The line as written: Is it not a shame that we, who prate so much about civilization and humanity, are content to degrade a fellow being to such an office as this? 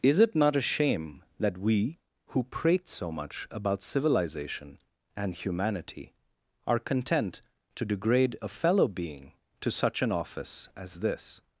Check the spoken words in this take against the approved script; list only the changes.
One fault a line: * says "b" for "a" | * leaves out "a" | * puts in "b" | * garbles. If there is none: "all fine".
all fine